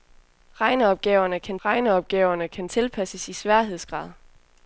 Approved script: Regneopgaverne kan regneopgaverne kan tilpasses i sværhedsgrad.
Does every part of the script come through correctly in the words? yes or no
yes